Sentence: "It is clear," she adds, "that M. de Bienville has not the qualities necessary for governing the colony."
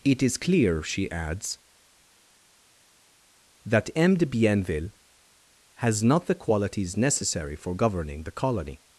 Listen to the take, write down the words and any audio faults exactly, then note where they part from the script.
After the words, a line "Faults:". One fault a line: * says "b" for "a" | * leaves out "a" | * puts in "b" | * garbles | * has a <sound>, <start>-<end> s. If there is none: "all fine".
"It is clear," she adds, "that M. de Bienville has not the qualities necessary for governing the colony."
Faults:
all fine